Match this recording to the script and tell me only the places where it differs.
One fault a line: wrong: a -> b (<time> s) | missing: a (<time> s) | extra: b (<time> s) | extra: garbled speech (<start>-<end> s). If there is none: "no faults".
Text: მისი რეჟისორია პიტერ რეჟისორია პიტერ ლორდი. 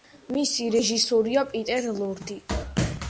missing: რეჟისორია პიტერ (1.9 s)